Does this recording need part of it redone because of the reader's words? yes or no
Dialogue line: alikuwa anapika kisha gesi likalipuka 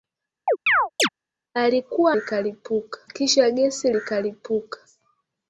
yes